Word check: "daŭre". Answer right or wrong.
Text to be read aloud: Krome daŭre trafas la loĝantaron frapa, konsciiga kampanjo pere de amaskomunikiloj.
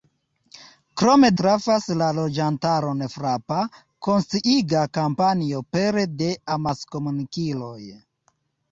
wrong